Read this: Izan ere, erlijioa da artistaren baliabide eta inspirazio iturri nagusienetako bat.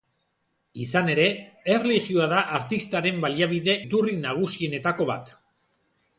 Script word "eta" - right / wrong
wrong